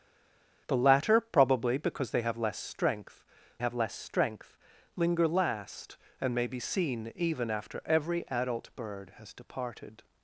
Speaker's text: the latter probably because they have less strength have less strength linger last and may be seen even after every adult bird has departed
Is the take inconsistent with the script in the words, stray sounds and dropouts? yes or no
no